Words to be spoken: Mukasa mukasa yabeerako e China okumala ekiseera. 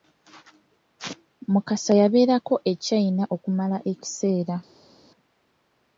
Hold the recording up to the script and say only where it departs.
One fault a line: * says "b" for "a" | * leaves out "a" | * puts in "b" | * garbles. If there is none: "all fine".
* leaves out "mukasa"